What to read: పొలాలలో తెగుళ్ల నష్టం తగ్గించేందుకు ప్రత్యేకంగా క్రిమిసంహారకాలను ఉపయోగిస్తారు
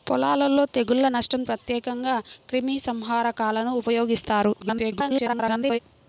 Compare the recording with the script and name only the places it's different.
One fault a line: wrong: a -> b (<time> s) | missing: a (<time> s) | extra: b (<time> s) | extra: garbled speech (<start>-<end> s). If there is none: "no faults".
missing: తగ్గించేందుకు (1.4 s)
extra: garbled speech (4.6-5.8 s)